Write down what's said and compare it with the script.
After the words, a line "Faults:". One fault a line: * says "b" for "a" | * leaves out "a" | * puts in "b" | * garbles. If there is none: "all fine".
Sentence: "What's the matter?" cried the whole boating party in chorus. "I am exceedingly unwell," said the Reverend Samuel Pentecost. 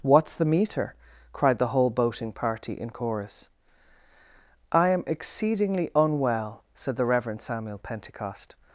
"What's the meter?" cried the whole boating party in chorus. "I am exceedingly unwell," said the Reverend Samuel Pentecost.
Faults:
* says "meter" for "matter"